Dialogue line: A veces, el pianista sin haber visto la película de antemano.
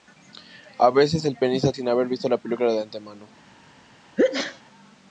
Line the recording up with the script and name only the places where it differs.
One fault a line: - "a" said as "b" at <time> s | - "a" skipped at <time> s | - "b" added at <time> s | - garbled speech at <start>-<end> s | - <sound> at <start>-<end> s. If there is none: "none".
- sneeze at 4.2-4.6 s